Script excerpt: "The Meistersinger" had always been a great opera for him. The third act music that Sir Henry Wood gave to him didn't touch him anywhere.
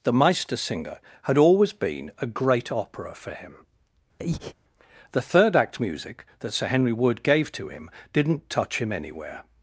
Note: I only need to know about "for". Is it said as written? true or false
true